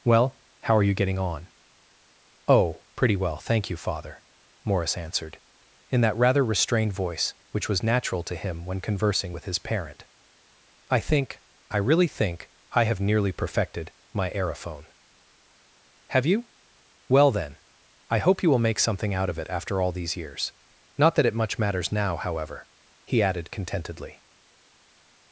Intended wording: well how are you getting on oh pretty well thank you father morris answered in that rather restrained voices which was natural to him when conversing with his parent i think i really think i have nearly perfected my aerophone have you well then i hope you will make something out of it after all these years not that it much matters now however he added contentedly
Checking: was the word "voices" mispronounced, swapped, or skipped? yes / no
yes